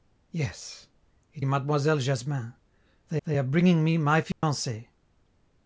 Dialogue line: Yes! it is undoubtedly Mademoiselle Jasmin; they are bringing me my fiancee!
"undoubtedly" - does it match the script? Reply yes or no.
no